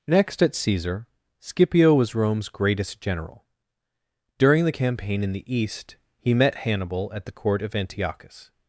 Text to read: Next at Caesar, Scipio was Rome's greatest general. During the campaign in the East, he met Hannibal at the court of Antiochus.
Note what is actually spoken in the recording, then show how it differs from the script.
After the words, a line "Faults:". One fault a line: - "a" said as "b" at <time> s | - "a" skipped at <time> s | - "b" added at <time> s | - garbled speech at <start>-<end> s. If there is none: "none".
Next at Caesar, Scipio was Rome's greatest general. During the campaign in the East, he met Hannibal at the court of Antiochus.
Faults:
none